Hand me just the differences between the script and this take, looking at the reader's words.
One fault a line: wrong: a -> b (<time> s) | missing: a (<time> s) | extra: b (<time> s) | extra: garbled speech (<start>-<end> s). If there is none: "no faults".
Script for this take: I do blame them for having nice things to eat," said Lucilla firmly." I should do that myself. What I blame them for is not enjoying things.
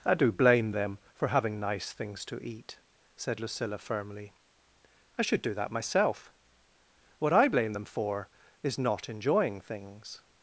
no faults